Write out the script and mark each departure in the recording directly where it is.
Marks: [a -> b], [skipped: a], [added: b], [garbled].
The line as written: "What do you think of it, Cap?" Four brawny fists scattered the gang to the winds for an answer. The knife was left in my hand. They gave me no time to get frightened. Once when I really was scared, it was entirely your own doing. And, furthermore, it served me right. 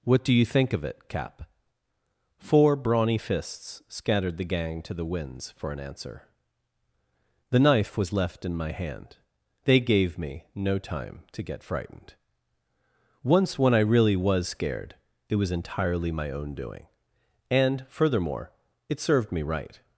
"What do you think of it, Cap?" Four brawny fists scattered the gang to the winds for an answer. The knife was left in my hand. They gave me no time to get frightened. Once when I really was scared, it was entirely [your -> my] own doing. And, furthermore, it served me right.